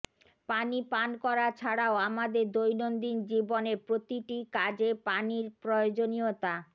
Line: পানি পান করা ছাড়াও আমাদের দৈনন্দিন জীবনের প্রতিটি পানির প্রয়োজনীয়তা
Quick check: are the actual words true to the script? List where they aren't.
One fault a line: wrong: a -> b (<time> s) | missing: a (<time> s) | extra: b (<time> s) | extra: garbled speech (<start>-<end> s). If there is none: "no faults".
extra: কাজে (4.6 s)